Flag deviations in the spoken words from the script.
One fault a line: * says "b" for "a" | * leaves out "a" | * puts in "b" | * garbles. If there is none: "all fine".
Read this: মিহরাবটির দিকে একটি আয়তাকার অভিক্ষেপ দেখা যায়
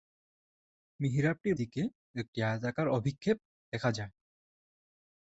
all fine